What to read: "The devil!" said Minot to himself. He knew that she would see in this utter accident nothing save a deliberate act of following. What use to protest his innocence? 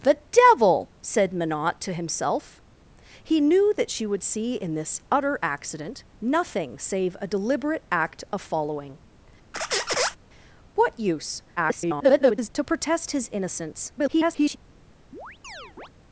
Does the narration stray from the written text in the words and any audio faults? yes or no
yes